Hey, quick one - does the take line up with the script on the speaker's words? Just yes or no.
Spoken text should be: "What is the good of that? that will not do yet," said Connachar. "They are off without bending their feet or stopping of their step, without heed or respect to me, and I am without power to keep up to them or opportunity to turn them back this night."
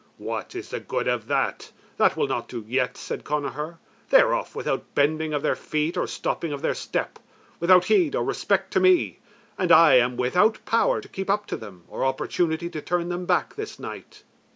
no